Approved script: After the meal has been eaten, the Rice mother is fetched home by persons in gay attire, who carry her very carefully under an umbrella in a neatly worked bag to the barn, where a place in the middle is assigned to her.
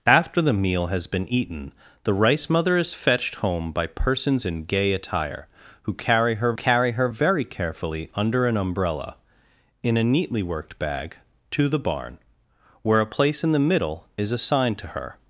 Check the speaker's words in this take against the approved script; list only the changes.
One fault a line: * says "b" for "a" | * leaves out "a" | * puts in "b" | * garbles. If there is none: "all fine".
* puts in "carry her"